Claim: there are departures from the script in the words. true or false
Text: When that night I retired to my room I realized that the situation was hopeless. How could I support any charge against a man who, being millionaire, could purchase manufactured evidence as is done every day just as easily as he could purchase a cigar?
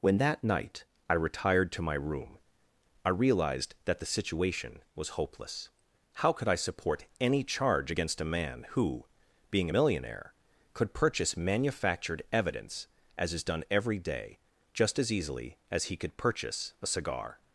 false